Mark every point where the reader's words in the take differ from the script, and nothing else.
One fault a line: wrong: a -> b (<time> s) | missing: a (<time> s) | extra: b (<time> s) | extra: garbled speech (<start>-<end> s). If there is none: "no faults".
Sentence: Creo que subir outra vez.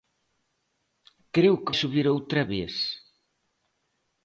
no faults